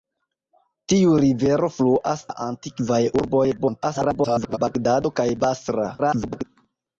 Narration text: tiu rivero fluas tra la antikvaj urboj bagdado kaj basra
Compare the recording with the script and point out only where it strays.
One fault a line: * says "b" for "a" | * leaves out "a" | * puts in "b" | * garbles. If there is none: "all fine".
* leaves out "tra"
* garbles
* garbles